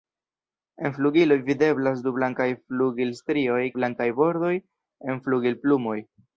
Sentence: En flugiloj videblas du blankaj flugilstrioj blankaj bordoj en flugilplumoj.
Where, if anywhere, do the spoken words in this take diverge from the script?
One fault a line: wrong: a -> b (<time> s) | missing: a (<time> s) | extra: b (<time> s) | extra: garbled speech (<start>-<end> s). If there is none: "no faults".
no faults